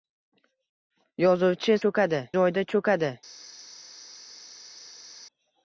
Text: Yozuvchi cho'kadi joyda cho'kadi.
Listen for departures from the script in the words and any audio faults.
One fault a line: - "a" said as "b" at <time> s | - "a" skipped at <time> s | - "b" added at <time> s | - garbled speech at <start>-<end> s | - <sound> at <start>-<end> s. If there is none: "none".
none